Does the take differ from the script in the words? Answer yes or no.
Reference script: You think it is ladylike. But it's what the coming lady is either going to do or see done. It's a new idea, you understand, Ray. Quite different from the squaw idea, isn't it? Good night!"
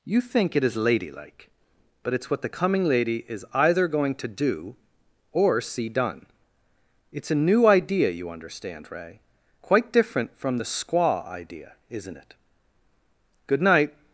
no